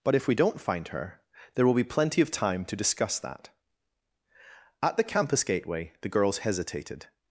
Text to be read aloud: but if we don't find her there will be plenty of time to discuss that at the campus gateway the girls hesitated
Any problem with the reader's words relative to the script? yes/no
no